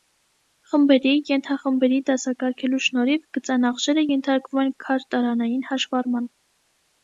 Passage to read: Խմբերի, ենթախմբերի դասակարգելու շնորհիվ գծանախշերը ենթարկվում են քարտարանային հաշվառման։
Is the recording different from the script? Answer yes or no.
no